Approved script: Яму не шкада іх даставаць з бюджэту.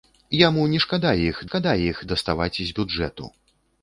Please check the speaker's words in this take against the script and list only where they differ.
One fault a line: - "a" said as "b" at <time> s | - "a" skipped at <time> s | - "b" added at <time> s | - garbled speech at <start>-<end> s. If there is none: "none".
- "шкада іх" added at 1.5 s